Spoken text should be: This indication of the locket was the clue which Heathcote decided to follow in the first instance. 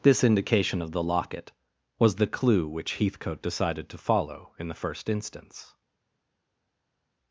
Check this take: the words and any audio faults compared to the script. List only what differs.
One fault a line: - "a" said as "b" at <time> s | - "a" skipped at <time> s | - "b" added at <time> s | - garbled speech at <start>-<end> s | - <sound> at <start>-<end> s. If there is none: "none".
none